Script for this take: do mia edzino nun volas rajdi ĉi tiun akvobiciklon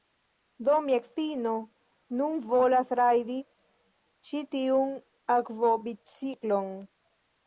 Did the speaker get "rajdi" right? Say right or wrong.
right